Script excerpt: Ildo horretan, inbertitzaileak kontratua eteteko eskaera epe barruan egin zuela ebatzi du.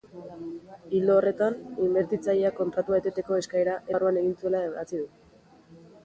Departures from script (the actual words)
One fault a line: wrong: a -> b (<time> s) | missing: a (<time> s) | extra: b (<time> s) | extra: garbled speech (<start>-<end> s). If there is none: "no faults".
missing: epe (3.8 s)